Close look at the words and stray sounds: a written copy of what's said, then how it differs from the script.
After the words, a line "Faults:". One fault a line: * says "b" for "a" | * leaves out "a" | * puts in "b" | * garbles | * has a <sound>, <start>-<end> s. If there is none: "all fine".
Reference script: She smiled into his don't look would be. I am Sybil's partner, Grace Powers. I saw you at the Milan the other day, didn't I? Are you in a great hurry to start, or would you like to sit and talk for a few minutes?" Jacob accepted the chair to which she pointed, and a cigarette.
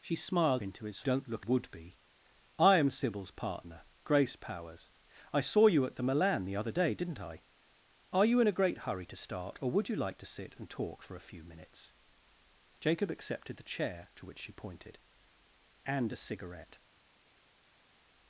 She smiled into his don't look would be. I am Sybil's partner, Grace Powers. I saw you at the Milan the other day, didn't I? Are you in a great hurry to start, or would you like to sit and talk for a few minutes?" Jacob accepted the chair to which she pointed, and a cigarette.
Faults:
all fine